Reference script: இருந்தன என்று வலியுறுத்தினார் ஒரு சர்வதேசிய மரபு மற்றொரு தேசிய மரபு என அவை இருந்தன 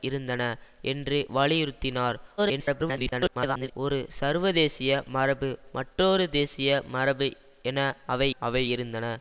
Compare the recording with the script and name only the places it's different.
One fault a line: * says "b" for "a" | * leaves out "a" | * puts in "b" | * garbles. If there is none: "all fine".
* garbles
* puts in "அவை"